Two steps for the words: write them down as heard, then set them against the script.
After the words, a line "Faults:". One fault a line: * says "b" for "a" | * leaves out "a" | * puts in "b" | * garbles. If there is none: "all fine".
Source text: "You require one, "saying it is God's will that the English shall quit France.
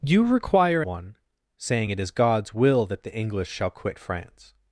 "You require one, "saying it is God's will that the English shall quit France.
Faults:
all fine